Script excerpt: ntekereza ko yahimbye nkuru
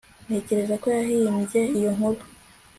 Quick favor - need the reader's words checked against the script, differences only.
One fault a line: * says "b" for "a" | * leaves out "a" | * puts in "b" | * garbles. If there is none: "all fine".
* puts in "iyo"